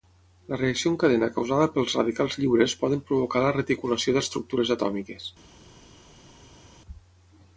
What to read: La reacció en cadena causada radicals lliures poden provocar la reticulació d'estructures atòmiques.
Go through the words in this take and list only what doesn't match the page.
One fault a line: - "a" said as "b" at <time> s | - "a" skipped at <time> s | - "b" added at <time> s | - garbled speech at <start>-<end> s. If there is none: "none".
- "pels" added at 1.8 s